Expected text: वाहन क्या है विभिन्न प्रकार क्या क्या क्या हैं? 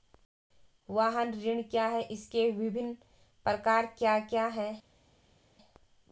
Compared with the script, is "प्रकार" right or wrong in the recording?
right